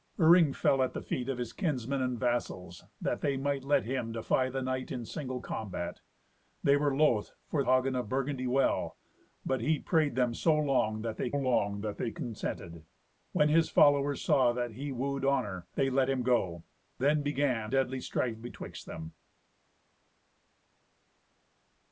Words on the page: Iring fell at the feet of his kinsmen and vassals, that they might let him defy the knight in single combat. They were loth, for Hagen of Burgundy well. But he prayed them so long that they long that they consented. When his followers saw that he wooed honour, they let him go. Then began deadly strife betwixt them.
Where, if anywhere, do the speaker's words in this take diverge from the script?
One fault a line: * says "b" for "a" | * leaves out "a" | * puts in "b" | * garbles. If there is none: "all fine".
all fine